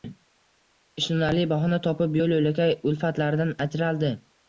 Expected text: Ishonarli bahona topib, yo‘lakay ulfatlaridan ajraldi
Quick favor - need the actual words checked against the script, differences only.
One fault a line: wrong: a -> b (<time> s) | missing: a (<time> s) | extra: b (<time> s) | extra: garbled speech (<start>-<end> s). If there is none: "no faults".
extra: yo‘l (2.2 s)